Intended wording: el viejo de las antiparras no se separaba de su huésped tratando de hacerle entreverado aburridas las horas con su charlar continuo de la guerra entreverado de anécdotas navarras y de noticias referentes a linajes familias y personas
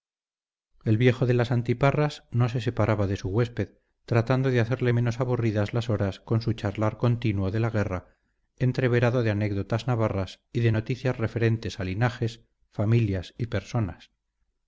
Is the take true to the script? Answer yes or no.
no